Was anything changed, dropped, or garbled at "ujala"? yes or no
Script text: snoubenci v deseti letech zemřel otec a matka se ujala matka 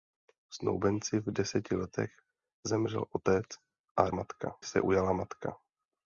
no